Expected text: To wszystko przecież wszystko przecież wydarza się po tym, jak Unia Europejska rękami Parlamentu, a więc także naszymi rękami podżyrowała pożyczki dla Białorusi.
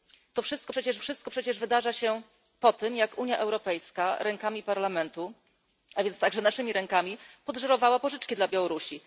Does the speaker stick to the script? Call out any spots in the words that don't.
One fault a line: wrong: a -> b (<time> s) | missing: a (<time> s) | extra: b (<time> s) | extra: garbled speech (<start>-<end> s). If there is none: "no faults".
no faults